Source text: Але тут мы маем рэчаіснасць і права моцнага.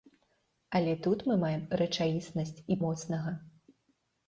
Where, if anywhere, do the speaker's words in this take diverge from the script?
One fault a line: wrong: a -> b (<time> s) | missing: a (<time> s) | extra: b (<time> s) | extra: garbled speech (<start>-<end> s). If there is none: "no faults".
missing: права (2.8 s)